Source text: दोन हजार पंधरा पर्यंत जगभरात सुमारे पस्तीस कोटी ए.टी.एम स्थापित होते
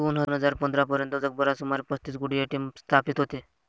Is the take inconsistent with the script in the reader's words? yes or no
no